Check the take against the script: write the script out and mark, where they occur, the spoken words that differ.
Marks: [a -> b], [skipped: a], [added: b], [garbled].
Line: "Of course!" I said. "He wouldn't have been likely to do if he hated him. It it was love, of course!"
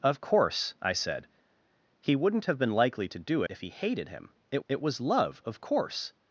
"Of course!" I said. "He wouldn't have been likely to do if he hated him. It it was love, of course!"